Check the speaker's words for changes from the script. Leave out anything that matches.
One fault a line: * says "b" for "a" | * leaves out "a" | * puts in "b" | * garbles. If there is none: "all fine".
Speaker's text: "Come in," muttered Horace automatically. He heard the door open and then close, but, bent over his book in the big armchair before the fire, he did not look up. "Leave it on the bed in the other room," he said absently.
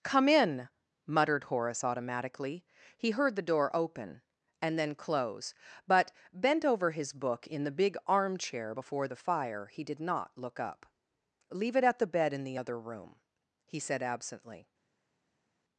* says "at" for "on"